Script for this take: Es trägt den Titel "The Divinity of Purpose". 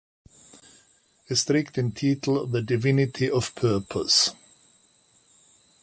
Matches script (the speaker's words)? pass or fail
pass